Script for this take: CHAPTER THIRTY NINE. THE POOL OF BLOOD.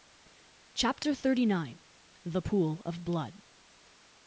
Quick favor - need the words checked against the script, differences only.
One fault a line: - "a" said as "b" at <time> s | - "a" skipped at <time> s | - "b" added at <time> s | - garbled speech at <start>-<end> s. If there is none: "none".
none